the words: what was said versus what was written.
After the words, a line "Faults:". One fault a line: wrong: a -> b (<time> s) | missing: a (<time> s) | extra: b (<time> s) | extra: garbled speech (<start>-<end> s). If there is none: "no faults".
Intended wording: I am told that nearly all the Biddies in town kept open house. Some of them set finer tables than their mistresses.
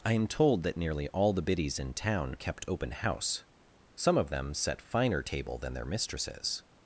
I am told that nearly all the Biddies in town kept open house. Some of them set finer table than their mistresses.
Faults:
wrong: tables -> table (5.2 s)